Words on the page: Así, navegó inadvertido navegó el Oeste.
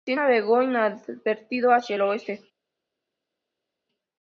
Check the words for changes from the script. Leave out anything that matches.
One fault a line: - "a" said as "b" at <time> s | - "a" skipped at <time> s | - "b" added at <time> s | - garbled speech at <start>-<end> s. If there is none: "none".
- "navegó" said as "hacia" at 1.7 s